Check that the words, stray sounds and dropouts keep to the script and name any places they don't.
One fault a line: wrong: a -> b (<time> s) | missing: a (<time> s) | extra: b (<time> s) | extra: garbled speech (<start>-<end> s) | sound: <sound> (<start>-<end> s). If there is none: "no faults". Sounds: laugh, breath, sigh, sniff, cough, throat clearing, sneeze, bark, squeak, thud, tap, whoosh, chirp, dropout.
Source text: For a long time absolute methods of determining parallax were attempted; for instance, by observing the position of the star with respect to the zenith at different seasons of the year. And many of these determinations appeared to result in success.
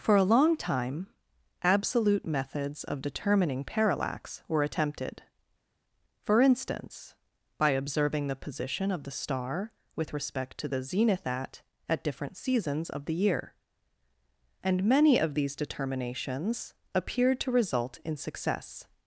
extra: at (11.9 s)